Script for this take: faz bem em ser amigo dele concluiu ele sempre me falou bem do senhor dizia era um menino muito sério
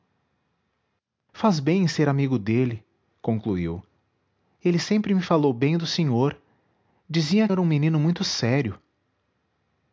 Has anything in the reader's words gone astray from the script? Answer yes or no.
no